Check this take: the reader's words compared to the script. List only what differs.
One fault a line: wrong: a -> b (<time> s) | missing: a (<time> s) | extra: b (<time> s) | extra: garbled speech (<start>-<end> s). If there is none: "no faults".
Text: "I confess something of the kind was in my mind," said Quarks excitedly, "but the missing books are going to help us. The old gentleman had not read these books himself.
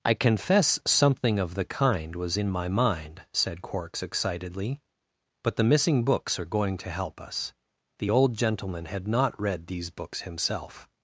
no faults